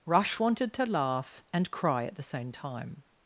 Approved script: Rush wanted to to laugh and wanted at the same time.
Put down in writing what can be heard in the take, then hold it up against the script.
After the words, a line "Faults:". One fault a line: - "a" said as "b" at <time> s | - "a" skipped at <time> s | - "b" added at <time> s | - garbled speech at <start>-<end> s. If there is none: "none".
Rush wanted to laugh and cry at the same time.
Faults:
- "to" skipped at 0.8 s
- "wanted" said as "cry" at 1.7 s